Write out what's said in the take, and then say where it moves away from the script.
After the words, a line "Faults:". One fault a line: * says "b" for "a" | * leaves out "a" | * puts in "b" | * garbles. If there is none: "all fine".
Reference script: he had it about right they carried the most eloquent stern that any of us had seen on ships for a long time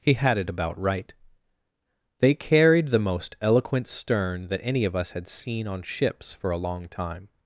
he had it about right they carried the most eloquent stern that any of us had seen on ships for a long time
Faults:
all fine